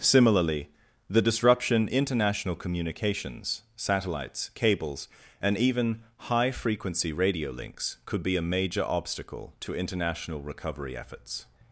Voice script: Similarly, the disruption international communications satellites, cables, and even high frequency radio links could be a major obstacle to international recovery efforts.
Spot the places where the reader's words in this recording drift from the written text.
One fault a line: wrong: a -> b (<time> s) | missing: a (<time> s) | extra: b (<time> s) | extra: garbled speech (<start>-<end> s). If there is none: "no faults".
no faults